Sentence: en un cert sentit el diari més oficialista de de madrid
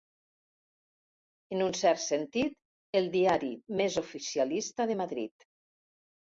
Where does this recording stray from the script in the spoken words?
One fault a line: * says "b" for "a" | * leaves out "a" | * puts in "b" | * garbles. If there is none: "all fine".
* leaves out "de"